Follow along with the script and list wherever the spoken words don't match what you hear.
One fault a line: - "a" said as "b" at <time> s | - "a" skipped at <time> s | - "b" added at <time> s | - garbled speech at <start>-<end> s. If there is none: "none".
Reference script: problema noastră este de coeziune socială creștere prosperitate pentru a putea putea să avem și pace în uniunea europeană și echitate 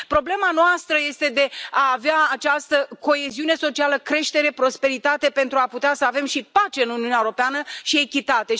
- "a avea această" added at 1.7 s
- "putea" skipped at 5.9 s